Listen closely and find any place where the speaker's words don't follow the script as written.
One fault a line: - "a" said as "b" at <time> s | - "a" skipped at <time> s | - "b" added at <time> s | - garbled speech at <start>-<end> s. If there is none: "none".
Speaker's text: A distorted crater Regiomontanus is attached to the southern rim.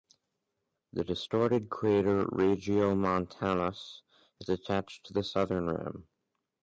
- "A" said as "The" at 0.9 s